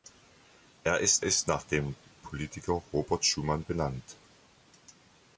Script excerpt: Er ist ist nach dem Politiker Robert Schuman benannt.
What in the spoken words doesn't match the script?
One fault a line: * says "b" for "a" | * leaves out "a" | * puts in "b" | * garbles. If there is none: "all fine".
all fine